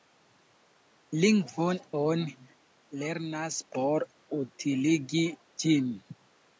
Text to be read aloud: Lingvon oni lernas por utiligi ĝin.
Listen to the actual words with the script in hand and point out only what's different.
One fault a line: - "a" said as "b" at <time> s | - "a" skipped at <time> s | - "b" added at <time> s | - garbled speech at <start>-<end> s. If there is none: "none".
none